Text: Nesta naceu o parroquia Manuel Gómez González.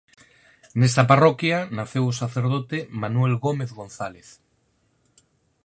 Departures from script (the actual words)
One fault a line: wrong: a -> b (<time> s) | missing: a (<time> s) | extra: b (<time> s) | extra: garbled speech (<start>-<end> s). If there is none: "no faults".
extra: parroquia (1.1 s)
wrong: parroquia -> sacerdote (2.2 s)